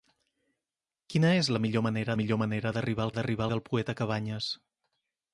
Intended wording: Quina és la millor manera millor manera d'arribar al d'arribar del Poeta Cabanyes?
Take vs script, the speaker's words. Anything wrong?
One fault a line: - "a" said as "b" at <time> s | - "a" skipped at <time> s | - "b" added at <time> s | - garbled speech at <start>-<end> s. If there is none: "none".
none